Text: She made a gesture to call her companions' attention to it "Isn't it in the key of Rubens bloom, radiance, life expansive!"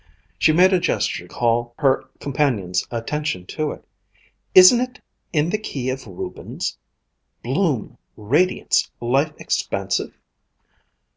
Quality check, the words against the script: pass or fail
fail